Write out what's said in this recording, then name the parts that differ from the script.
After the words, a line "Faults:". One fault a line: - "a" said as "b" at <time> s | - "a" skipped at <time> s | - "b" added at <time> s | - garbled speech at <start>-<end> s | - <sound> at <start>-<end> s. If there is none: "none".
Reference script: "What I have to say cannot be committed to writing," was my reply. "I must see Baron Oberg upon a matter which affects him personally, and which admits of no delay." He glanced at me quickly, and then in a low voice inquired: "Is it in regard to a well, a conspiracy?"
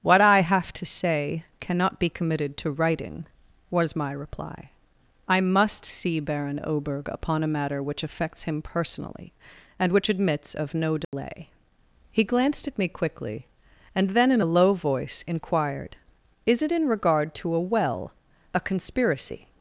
"What I have to say cannot be committed to writing," was my reply. "I must see Baron Oberg upon a matter which affects him personally, and which admits of no delay." He glanced at me quickly, and then in a low voice inquired: "Is it in regard to a well, a conspiracy?"
Faults:
- dropout at 11.0-11.1 s